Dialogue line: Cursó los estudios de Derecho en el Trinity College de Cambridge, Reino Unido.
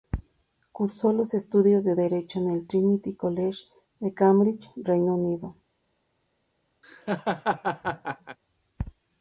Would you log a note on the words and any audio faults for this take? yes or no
yes